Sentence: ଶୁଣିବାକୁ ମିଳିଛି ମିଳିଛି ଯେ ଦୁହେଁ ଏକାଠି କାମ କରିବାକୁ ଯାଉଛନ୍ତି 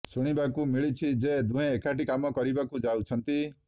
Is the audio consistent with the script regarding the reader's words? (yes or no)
no